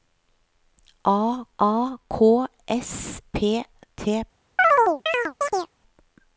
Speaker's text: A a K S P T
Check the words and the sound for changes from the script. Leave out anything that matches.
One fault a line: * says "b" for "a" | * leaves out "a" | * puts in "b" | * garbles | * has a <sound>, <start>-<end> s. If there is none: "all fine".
* has a chirp, 4.6-5.7 s